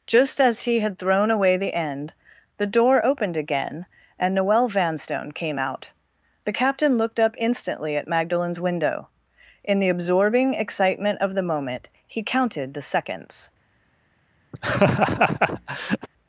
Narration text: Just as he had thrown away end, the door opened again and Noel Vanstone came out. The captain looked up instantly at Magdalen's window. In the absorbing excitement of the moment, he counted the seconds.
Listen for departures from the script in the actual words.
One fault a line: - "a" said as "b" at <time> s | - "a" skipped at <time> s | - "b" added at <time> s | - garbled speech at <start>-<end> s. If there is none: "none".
- "the" added at 1.6 s